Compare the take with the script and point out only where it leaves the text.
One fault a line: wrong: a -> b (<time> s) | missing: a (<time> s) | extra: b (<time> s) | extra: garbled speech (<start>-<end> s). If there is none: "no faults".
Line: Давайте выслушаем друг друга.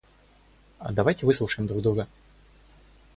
no faults